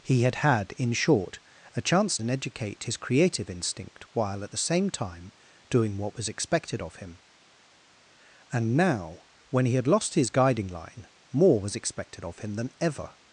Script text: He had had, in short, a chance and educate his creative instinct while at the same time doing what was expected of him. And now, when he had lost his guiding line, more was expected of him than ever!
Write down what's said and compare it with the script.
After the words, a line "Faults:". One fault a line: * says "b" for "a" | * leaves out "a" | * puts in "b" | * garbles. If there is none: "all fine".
He had had, in short, a chance and educate his creative instinct while at the same time doing what was expected of him. And now, when he had lost his guiding line, more was expected of him than ever!
Faults:
all fine